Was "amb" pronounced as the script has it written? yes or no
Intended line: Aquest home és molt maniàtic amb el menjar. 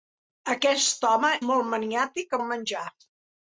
no